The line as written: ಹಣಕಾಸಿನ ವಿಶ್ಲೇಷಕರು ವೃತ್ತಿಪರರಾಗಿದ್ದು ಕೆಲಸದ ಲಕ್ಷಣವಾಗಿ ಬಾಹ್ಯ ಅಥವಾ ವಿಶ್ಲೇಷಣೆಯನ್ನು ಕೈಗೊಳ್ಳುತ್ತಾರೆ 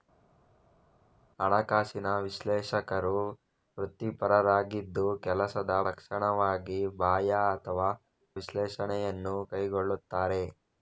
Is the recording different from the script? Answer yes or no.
no